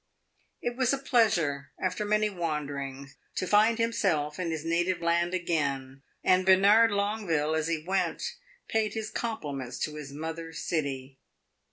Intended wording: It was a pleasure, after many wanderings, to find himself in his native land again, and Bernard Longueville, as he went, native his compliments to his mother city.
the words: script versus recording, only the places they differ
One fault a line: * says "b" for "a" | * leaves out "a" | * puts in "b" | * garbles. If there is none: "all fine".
* says "paid" for "native"